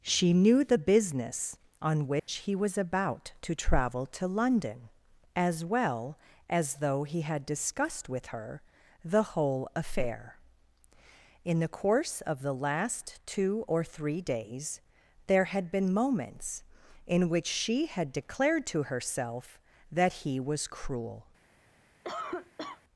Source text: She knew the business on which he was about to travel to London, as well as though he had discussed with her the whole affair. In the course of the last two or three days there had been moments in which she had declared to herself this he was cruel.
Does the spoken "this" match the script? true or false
false